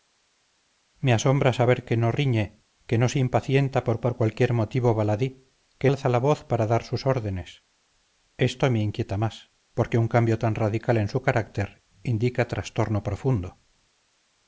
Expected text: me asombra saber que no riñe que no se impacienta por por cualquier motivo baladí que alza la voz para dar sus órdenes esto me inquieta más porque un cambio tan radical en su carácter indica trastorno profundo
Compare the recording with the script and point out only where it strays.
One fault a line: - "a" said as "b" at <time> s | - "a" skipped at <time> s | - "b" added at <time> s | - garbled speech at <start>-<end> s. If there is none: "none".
none